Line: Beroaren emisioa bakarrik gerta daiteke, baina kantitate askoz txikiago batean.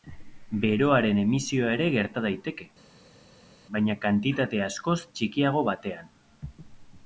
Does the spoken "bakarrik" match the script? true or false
false